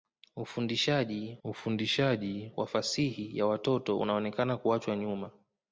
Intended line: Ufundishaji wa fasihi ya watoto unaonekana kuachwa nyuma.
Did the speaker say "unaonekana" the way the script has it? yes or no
yes